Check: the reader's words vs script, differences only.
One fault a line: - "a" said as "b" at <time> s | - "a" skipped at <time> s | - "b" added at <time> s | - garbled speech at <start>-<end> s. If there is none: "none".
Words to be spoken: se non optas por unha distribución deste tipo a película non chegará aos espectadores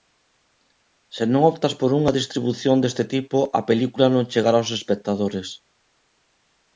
none